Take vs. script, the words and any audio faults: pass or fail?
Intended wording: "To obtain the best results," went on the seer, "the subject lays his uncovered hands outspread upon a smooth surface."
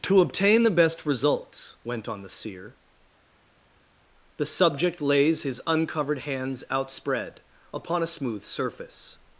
pass